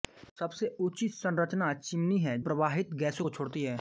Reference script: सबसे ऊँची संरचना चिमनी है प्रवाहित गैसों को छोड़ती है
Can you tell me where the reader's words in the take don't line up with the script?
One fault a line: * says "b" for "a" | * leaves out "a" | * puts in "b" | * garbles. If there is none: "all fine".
all fine